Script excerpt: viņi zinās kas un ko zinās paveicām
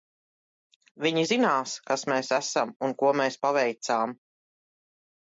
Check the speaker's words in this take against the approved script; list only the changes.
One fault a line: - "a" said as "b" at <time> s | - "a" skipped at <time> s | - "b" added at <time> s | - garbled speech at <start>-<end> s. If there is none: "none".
- "mēs esam" added at 2.1 s
- "zinās" said as "mēs" at 3.2 s